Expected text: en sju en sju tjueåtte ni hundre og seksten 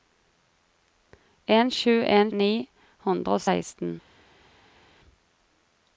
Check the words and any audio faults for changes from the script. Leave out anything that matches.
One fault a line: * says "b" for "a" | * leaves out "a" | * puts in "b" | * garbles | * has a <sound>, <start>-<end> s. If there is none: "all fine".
* leaves out "sju tjueåtte"